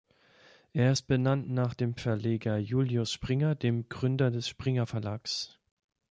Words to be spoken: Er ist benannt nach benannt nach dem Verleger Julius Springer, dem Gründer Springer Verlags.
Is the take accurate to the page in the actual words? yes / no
no